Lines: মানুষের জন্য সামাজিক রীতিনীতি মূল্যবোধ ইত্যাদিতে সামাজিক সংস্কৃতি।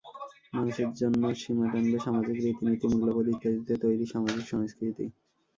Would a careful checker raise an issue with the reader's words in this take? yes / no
yes